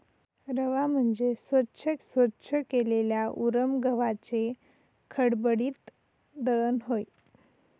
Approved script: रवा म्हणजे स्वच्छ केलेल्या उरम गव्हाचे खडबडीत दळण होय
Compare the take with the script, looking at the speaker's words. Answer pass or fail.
fail